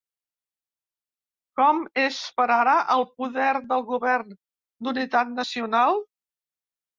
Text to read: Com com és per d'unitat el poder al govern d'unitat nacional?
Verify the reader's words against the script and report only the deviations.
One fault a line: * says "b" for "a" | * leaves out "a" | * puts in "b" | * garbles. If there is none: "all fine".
* leaves out "com"
* says "ara" for "d'unitat"
* says "del" for "al"